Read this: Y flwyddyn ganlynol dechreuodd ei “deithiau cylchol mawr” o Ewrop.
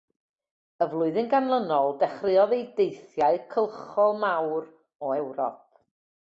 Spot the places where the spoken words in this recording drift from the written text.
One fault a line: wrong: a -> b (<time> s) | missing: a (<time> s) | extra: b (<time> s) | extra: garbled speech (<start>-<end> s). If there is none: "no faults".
no faults